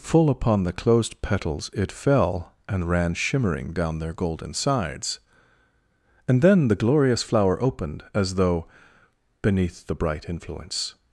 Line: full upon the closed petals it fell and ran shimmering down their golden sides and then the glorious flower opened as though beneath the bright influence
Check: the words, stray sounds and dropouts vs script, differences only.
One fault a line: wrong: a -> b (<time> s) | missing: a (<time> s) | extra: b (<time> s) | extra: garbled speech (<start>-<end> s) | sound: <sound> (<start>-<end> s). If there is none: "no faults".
no faults